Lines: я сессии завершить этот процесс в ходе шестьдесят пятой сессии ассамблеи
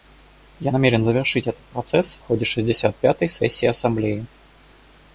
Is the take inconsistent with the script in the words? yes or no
yes